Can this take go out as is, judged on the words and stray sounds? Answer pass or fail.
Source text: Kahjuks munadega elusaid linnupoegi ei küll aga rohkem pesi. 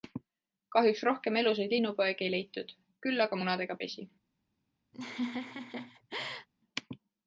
fail